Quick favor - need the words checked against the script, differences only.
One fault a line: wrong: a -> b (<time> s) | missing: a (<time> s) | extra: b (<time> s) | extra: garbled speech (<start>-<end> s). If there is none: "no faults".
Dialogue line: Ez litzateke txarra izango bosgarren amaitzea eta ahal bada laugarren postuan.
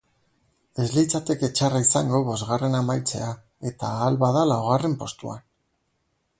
no faults